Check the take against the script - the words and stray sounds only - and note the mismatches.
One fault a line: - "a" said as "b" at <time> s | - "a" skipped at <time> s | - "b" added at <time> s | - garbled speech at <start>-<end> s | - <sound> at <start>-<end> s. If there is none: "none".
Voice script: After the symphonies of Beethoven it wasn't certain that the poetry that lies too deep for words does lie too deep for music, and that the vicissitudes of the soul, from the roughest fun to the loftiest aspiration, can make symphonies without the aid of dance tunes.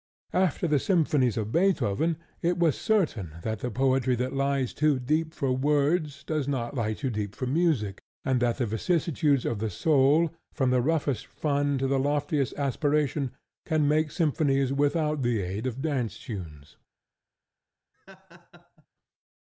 - "wasn't" said as "was" at 2.6 s
- "not" added at 6.5 s
- laugh at 17.9-18.9 s